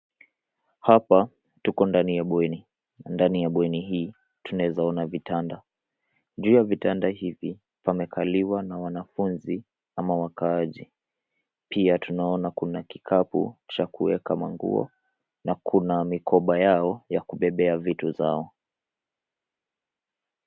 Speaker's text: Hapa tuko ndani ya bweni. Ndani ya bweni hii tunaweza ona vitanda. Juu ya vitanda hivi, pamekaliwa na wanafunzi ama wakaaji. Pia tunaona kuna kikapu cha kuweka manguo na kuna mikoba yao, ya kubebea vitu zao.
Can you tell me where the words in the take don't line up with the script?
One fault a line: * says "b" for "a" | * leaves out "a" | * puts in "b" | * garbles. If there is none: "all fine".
all fine